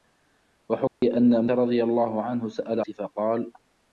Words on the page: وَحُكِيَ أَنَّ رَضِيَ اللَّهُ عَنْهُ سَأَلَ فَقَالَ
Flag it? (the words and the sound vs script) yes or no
yes